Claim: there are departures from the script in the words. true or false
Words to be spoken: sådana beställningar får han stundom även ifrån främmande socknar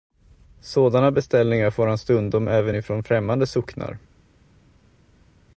false